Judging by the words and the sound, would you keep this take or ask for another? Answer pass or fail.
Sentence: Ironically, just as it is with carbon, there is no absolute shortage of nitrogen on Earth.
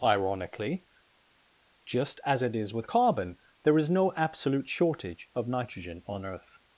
pass